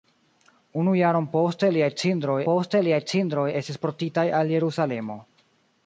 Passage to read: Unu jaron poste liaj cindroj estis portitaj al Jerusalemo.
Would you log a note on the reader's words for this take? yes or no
yes